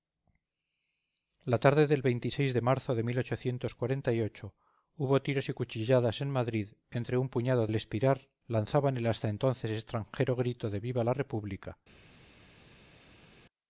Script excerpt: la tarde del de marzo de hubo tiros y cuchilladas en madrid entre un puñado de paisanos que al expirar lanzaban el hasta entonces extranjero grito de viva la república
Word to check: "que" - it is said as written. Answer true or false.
false